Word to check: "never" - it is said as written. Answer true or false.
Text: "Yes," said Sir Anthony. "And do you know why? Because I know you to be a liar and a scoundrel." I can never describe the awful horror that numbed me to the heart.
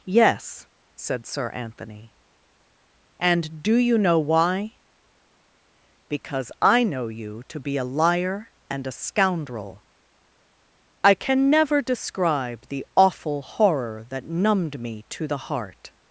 true